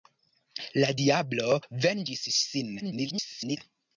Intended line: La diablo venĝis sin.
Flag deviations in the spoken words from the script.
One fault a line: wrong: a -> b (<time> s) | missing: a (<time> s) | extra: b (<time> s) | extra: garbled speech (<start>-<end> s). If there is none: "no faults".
extra: garbled speech (2.8-3.6 s)